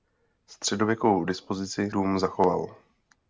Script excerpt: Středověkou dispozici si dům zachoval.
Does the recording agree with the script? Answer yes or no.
no